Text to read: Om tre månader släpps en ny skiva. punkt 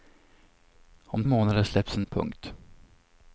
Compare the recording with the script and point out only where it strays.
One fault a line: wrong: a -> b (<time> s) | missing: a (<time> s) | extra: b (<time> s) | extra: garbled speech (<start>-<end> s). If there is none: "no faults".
missing: tre (1.2 s)
missing: ny skiva (2.1 s)